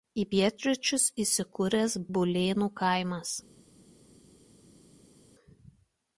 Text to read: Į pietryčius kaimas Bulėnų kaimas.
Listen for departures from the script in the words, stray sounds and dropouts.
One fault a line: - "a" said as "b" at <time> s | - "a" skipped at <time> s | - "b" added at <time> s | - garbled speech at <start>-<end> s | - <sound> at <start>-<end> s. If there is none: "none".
- "kaimas" said as "įsikūręs" at 1.2 s